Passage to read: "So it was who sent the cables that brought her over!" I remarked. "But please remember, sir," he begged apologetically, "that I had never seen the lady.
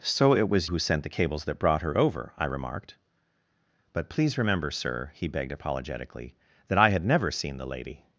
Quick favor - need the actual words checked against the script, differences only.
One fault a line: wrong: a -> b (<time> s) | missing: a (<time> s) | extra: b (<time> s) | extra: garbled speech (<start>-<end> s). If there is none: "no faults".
no faults